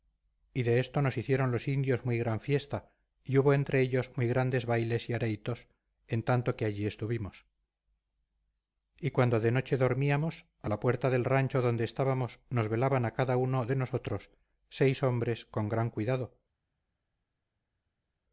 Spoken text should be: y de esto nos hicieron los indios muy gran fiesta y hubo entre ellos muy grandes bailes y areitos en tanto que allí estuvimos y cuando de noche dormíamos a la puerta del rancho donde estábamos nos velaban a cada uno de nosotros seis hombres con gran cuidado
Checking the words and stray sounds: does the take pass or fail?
pass